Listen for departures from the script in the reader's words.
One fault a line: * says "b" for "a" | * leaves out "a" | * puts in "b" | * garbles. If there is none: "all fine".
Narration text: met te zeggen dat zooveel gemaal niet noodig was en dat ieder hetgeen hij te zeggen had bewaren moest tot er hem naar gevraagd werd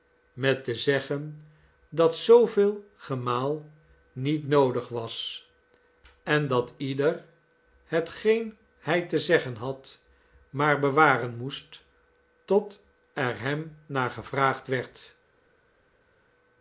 * puts in "maar"